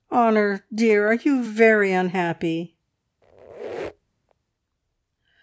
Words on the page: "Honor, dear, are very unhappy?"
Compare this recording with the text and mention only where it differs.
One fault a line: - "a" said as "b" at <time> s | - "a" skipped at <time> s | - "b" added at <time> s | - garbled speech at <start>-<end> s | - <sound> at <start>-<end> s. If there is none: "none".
- "you" added at 1.1 s
- squeak at 3.2-4.3 s